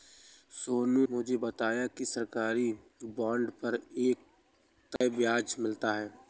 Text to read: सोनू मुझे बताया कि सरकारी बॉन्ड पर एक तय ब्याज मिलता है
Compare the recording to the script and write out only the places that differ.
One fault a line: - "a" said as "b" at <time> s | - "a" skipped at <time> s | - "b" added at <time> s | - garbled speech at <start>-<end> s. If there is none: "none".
none